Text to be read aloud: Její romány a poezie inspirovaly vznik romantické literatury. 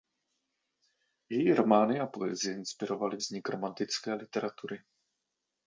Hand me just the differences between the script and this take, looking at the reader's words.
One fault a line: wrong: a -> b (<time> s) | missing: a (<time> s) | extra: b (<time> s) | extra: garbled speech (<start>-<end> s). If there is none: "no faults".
no faults